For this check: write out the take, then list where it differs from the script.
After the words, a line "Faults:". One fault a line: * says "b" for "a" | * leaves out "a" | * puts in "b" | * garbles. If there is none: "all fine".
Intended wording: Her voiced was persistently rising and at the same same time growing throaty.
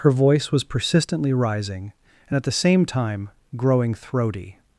Her voice was persistently rising and at the same time growing throaty.
Faults:
* says "voice" for "voiced"
* leaves out "same"